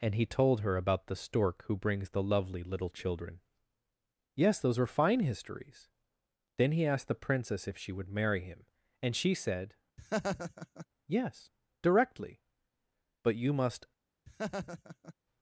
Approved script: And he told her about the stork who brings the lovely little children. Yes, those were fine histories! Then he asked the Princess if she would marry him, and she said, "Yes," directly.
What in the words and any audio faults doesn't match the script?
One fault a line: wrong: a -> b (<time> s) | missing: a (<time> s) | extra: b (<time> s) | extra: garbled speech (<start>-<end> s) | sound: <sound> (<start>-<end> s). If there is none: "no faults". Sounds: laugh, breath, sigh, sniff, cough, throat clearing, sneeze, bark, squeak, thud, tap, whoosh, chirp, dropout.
sound: laugh (10.0-10.9 s)
extra: But you must (13.2 s)
sound: laugh (14.3-15.1 s)